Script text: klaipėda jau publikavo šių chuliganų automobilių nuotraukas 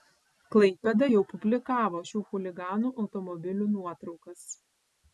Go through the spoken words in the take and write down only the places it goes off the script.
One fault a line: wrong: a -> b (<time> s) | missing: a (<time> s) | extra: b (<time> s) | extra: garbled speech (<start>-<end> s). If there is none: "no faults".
no faults